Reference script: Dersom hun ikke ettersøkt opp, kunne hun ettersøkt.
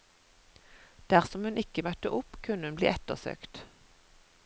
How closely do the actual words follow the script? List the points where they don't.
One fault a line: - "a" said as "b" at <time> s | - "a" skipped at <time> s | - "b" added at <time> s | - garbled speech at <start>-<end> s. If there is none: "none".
- "ettersøkt" said as "møtte" at 1.9 s
- "bli" added at 2.8 s